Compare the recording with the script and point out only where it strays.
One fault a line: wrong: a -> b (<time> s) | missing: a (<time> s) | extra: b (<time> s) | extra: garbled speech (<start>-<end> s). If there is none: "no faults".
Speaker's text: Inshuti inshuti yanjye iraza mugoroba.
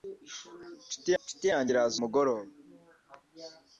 no faults